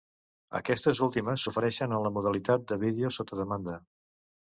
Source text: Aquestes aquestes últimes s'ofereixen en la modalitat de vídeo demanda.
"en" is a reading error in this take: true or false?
false